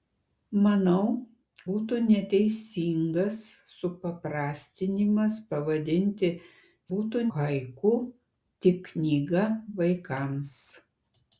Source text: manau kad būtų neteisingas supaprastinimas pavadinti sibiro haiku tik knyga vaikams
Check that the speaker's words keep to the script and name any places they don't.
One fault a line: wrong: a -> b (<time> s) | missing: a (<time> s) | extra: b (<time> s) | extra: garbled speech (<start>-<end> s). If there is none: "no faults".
missing: kad (1.0 s)
wrong: sibiro -> būtų (6.9 s)